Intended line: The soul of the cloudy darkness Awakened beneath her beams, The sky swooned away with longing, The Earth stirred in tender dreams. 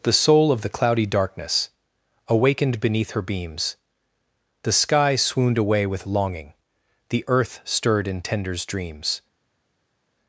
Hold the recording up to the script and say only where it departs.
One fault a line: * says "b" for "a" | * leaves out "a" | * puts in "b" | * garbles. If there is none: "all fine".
* says "tenders" for "tender"